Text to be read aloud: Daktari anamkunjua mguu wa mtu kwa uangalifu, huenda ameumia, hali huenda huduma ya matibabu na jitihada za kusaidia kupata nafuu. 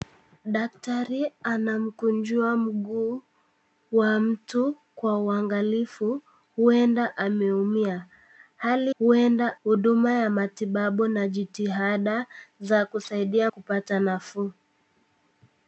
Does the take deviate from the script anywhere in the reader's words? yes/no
no